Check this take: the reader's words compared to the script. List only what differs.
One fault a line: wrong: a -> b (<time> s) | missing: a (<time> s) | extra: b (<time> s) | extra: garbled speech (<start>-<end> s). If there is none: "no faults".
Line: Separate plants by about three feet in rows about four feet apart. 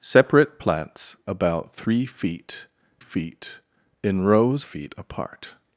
missing: by (1.2 s)
extra: feet (3.0 s)
missing: about four (4.7 s)